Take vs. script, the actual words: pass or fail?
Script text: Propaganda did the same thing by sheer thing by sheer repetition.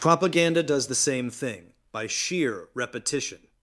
fail